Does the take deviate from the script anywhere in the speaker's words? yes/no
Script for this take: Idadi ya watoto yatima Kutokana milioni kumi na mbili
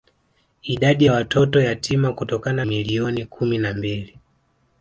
no